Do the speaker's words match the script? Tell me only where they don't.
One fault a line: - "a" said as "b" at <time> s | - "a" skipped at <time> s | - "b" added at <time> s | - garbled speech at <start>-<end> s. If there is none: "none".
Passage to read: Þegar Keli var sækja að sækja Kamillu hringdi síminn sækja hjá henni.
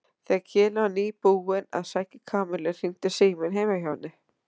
- "sækja" said as "nýbúinn" at 0.9 s
- "sækja" said as "heima" at 3.6 s